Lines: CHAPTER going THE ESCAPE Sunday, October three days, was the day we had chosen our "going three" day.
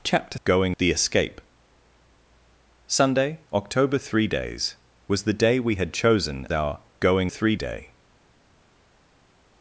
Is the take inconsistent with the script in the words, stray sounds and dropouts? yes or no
no